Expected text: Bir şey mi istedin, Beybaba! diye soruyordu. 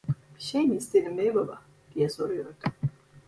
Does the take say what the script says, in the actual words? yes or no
yes